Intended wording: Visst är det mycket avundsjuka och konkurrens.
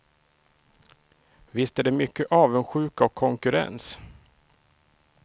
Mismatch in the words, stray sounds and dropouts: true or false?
false